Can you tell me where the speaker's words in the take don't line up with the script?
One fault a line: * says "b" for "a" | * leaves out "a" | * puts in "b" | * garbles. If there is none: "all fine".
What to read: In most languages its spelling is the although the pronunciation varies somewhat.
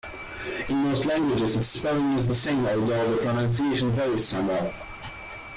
* puts in "same"